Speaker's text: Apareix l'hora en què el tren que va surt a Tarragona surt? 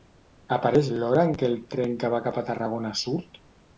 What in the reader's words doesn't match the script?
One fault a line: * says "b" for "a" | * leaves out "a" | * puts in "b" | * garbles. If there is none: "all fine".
* says "cap" for "surt"